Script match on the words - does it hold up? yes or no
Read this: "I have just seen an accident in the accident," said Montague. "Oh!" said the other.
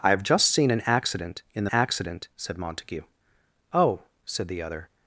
yes